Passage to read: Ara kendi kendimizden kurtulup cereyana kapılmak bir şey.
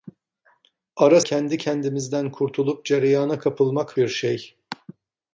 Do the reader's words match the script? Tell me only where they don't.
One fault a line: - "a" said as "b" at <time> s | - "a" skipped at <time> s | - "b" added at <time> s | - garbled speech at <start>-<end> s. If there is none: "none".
none